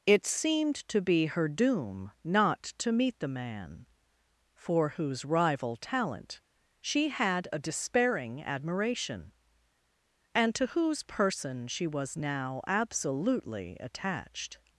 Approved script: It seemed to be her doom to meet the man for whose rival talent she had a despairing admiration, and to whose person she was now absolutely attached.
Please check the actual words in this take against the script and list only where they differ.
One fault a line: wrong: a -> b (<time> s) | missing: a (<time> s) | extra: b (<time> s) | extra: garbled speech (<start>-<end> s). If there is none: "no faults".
extra: not (2.2 s)